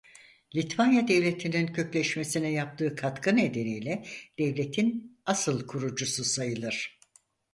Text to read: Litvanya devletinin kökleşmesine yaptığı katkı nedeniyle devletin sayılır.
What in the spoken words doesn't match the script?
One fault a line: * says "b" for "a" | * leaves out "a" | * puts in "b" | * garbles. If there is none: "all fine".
* puts in "asıl kurucusu"